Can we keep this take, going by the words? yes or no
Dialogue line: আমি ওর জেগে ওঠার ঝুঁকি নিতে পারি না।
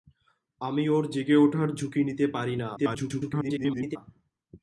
no